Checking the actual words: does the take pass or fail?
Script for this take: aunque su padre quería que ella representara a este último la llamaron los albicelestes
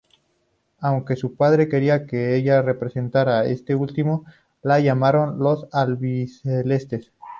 pass